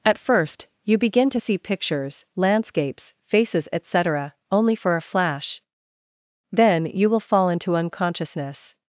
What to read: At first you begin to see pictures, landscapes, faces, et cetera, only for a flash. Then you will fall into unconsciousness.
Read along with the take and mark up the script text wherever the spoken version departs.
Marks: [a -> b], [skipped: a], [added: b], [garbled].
At first you begin to see pictures, landscapes, faces, et cetera, only for a flash. Then you will fall into unconsciousness.